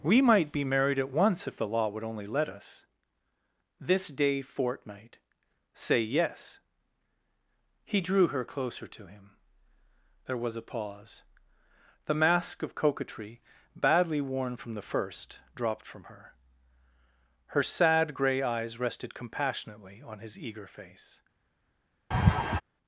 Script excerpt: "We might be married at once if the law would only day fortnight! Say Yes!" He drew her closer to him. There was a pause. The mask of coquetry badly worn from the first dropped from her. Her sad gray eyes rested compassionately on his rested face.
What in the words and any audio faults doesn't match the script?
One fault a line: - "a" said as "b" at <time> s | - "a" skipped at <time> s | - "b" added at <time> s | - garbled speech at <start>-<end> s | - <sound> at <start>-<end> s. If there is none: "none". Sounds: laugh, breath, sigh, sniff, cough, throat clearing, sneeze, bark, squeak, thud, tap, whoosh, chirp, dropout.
- "let us This" added at 2.2 s
- "rested" said as "eager" at 20.4 s
- laugh at 22.1-22.6 s